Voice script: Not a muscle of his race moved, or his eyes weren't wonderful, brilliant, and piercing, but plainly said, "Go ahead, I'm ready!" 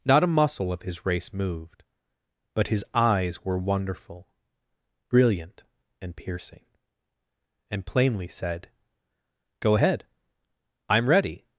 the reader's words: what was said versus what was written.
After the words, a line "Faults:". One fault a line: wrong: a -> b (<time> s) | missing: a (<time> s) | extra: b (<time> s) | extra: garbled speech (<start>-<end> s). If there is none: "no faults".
Not a muscle of his race moved, but his eyes were wonderful, brilliant, and piercing, and plainly said, "Go ahead, I'm ready!"
Faults:
wrong: or -> but (2.5 s)
wrong: weren't -> were (3.5 s)
wrong: but -> and (7.7 s)